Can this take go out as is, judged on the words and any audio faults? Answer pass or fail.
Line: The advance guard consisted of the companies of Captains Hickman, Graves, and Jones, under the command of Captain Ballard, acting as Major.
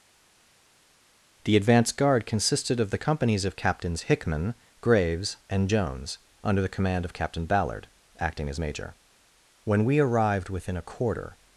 fail